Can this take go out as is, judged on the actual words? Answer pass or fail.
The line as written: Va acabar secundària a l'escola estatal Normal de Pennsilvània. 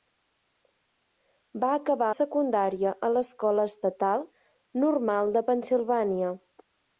pass